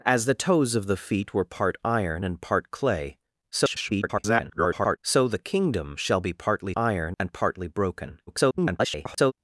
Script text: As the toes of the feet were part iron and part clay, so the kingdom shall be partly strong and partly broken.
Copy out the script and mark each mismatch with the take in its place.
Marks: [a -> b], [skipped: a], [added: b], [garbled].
As the toes of the feet were part iron and part clay, [garbled] so the kingdom shall be partly [strong -> iron] and partly broken. [garbled]